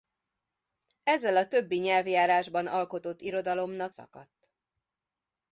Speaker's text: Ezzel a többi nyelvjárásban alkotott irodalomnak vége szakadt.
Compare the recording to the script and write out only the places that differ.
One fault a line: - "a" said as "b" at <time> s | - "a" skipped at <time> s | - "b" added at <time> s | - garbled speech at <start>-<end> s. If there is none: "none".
- "vége" skipped at 4.0 s